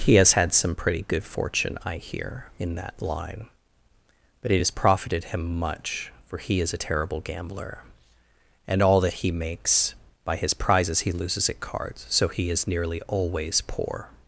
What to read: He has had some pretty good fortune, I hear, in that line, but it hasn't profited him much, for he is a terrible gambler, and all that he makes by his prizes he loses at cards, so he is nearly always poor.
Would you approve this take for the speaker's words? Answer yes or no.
no